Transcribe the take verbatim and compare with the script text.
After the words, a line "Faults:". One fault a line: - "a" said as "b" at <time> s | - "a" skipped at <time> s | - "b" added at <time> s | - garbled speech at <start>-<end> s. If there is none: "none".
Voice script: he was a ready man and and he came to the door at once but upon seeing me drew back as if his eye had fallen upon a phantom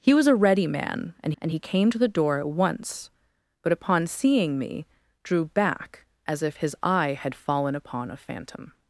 he was a ready man and and he came to the door at once but upon seeing me drew back as if his eye had fallen upon a phantom
Faults:
none